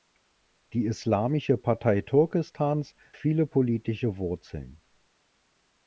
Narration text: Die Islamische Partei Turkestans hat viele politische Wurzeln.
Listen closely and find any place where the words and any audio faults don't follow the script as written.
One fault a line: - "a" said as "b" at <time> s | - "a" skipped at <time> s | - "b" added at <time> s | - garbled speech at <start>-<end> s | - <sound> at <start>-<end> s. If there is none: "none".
- "hat" skipped at 3.0 s